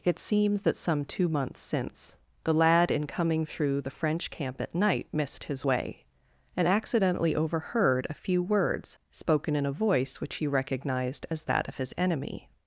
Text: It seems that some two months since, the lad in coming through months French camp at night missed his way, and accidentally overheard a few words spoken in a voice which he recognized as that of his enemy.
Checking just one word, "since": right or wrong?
right